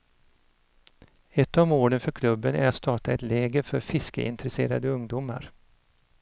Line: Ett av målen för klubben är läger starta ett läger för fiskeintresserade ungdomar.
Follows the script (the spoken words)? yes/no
no